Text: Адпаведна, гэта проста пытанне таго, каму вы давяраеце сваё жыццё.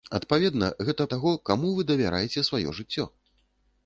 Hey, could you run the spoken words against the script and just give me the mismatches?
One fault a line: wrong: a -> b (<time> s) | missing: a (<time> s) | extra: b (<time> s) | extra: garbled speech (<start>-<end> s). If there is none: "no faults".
missing: проста пытанне (1.1 s)